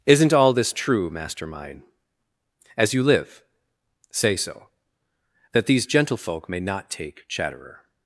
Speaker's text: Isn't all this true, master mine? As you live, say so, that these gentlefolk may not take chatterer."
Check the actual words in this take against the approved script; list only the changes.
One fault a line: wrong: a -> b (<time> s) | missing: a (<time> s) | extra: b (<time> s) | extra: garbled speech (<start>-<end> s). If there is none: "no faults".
no faults